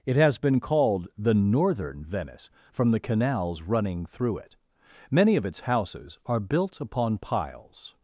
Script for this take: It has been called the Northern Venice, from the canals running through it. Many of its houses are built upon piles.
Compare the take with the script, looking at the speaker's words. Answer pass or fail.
pass